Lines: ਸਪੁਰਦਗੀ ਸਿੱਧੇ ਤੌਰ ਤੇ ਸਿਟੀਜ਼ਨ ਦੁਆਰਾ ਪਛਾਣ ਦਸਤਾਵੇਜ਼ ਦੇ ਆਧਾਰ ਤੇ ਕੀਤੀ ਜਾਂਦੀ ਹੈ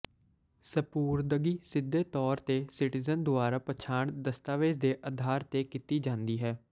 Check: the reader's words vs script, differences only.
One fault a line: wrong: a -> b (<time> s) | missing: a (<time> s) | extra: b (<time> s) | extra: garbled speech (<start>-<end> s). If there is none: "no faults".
no faults